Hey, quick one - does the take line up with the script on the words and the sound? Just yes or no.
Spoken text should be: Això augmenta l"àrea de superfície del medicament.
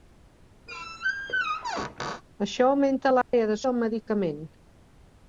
no